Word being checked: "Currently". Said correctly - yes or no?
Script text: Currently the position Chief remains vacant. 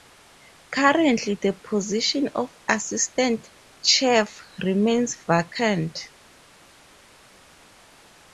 yes